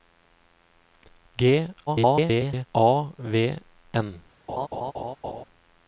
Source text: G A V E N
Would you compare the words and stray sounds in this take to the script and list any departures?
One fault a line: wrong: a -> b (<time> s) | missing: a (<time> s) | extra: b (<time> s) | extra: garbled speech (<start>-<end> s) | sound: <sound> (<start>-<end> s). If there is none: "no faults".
extra: garbled speech (1.9-2.7 s)
missing: E (3.6 s)
sound: laugh (4.5-5.4 s)